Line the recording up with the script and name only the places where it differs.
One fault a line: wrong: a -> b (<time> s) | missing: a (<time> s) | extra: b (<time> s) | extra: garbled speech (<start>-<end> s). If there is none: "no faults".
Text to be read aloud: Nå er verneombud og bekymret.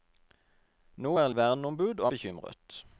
no faults